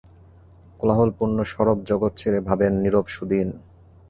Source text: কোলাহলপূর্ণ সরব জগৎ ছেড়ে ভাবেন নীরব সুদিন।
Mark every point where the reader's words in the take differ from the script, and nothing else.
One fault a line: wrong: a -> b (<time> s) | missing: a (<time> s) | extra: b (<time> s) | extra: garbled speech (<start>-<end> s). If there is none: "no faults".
no faults